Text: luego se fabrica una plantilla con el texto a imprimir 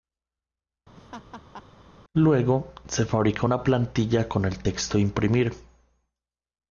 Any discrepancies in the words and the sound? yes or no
yes